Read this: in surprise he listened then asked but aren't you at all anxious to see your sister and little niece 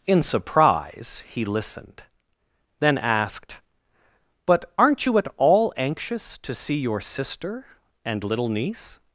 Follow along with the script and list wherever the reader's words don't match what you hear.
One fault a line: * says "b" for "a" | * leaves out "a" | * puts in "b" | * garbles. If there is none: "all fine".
all fine